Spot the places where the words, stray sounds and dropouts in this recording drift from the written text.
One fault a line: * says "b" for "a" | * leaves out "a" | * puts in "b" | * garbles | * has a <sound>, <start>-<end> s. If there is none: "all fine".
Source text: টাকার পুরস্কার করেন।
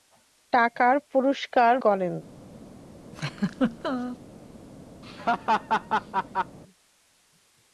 * has a laugh, 3.1-4.2 s
* has a laugh, 5.0-6.6 s